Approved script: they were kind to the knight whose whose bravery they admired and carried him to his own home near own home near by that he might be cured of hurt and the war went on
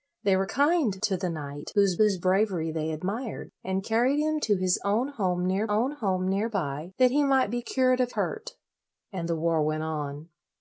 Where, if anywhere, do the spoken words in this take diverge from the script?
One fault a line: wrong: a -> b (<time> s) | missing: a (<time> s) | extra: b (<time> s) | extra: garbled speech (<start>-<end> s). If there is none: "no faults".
no faults